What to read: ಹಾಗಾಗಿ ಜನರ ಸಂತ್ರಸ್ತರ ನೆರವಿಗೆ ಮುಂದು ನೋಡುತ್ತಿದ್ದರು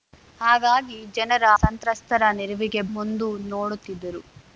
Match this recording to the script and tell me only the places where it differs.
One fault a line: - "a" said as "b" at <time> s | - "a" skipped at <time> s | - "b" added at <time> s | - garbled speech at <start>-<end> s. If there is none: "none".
none